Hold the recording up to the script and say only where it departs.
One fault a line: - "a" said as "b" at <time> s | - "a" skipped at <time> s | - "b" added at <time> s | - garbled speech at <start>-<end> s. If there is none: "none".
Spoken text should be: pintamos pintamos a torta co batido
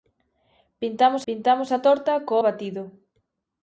none